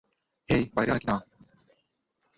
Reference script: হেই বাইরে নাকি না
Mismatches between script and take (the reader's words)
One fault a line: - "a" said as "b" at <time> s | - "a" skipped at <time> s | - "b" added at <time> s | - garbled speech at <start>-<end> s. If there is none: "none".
none